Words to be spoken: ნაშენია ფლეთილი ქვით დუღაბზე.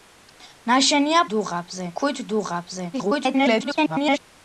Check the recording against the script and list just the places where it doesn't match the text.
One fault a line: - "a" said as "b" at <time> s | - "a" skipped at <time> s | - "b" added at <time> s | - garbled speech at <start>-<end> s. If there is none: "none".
- "ფლეთილი" said as "დუღაბზე" at 1.3 s
- garbled speech at 2.9-4.2 s